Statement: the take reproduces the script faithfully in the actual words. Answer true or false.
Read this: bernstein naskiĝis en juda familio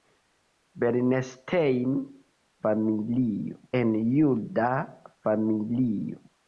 false